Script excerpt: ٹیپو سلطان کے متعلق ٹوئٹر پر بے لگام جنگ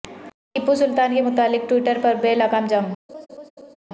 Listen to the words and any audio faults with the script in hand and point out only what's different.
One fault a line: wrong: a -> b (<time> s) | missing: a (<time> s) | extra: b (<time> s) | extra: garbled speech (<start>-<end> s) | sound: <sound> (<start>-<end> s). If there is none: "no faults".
sound: laugh (3.1-3.8 s)